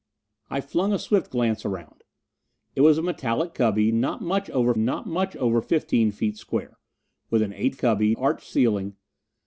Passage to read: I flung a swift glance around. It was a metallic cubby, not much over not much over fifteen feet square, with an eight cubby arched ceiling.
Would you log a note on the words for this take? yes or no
no